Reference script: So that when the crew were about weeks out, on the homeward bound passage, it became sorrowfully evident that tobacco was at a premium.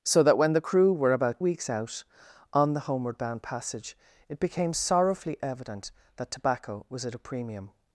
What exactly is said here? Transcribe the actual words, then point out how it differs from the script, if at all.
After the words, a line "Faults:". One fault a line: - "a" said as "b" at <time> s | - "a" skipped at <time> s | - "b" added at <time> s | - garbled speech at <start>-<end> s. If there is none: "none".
So that when the crew were about weeks out, on the homeward bound passage, it became sorrowfully evident that tobacco was at a premium.
Faults:
none